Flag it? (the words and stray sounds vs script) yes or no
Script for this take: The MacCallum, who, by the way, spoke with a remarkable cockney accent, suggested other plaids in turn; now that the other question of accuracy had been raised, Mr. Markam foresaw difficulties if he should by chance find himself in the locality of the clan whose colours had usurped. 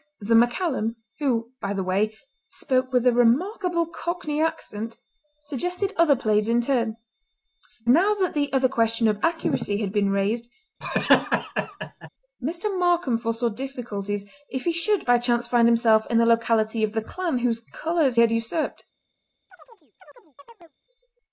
yes